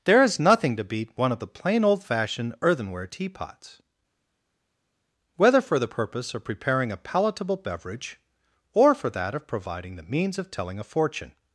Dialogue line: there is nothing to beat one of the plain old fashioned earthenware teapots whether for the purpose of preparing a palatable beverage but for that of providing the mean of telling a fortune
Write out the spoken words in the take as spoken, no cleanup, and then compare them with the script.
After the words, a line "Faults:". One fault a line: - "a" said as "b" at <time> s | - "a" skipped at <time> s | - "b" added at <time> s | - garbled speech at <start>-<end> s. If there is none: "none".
there is nothing to beat one of the plain old fashioned earthenware teapots whether for the purpose of preparing a palatable beverage or for that of providing the means of telling a fortune
Faults:
- "but" said as "or" at 8.7 s
- "mean" said as "means" at 10.0 s